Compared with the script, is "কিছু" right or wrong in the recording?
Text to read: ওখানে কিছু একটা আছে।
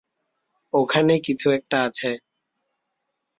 right